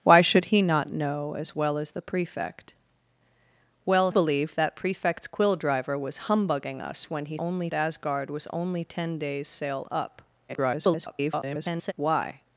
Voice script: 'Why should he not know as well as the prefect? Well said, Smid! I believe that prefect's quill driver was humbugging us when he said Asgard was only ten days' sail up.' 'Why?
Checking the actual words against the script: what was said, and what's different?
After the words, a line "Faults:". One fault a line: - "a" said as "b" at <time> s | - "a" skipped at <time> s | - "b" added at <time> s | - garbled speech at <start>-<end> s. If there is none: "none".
'Why should he not know as well as the prefect? Well believe that prefect's quill driver was humbugging us when he only Asgard was only ten days' sail up.' [garbled] 'Why?
Faults:
- "said Smid I" skipped at 4.1 s
- "said" said as "only" at 7.4 s
- garbled speech at 10.5-11.9 s